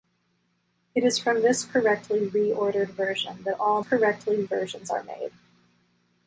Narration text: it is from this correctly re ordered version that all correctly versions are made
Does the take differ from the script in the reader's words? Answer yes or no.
no